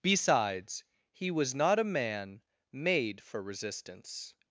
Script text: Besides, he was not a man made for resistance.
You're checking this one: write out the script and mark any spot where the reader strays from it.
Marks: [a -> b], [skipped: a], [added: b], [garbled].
Besides, he was not a man made for resistance.